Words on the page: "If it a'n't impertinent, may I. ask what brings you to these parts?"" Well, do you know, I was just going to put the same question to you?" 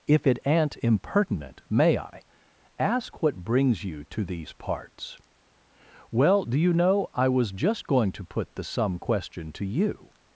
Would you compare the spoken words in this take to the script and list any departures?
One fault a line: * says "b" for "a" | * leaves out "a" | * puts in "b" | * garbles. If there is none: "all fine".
* says "some" for "same"